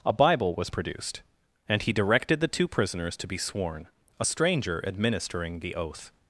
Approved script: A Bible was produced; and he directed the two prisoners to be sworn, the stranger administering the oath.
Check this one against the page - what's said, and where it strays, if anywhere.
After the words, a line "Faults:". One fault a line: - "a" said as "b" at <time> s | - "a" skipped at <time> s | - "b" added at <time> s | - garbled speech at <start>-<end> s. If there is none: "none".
A Bible was produced; and he directed the two prisoners to be sworn, a stranger administering the oath.
Faults:
- "the" said as "a" at 4.2 s